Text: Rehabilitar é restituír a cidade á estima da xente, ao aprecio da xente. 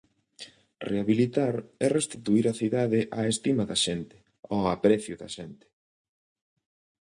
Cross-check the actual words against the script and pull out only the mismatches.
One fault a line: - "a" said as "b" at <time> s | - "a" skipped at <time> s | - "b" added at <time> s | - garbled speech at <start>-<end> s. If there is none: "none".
none